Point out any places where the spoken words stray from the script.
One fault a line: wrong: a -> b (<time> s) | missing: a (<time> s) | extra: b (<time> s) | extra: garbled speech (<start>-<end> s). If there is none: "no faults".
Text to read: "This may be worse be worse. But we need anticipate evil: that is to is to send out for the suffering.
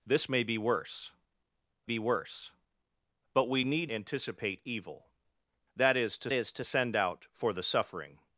no faults